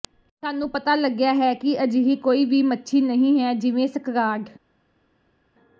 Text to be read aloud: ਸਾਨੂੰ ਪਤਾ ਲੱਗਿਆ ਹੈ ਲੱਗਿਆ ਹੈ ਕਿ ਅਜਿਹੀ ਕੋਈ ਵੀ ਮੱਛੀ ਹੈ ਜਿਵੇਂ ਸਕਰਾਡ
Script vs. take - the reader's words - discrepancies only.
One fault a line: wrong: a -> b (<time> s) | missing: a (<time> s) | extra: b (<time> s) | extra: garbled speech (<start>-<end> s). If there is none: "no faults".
missing: ਲੱਗਿਆ ਹੈ (1.5 s)
extra: ਨਹੀਂ (3.0 s)